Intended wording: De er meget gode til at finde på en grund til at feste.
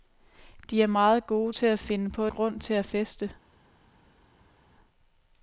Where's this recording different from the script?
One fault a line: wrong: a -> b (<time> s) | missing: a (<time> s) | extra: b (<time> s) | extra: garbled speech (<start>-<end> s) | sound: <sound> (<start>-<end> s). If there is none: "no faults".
missing: en (2.3 s)